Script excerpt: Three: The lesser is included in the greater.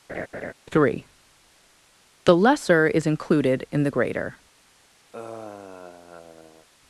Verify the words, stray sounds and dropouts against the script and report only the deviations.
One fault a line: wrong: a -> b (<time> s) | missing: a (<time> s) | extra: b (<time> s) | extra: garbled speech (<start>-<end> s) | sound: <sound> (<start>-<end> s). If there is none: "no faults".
sound: laugh (0.1-0.5 s)
sound: sigh (5.1-6.7 s)